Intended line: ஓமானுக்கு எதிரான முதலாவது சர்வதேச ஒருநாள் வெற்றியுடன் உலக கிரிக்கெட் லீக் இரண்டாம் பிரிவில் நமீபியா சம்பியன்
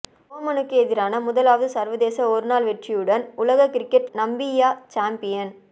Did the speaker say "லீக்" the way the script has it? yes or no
no